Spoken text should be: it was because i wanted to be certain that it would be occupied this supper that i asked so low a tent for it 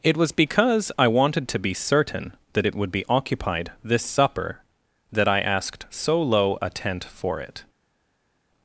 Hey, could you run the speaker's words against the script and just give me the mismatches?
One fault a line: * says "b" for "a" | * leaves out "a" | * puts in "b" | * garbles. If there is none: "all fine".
all fine